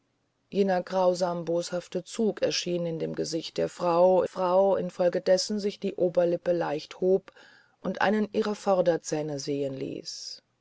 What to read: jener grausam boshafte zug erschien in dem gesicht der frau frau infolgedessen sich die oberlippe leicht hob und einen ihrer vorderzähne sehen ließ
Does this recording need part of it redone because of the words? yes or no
no